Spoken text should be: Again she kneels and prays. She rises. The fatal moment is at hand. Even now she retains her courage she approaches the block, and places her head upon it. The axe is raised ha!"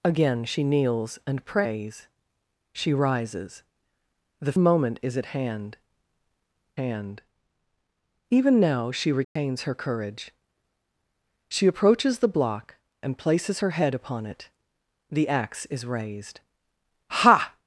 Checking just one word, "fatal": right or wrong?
wrong